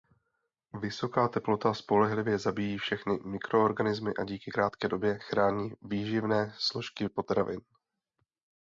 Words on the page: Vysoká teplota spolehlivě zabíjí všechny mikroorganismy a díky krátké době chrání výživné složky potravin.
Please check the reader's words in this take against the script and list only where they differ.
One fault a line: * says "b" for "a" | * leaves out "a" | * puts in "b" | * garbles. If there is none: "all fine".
all fine